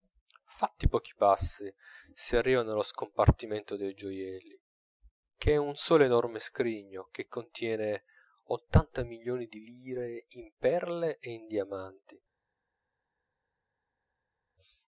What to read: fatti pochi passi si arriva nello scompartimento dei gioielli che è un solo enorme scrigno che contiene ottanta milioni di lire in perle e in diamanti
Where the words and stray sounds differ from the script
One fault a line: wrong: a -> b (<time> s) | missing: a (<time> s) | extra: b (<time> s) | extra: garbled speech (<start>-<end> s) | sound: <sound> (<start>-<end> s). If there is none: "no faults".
no faults